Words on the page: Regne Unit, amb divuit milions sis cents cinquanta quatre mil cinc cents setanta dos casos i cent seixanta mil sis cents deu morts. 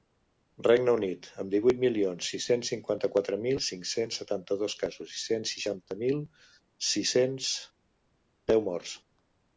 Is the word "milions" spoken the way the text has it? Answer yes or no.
yes